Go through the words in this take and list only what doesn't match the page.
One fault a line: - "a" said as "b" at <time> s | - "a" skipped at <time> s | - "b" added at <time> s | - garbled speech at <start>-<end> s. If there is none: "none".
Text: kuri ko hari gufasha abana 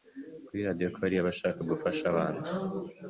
- "radio" added at 0.7 s
- "abashaka" added at 1.2 s